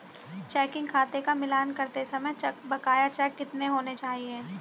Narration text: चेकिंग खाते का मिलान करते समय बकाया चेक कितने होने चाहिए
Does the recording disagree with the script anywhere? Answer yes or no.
no